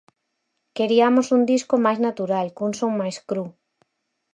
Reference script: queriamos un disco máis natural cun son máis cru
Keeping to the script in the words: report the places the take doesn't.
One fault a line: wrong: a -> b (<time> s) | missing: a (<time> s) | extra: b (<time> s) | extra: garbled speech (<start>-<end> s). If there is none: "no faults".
no faults